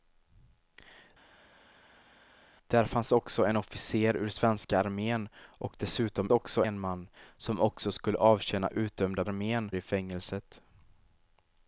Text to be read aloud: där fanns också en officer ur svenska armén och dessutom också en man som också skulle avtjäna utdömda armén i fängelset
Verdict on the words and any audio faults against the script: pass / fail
pass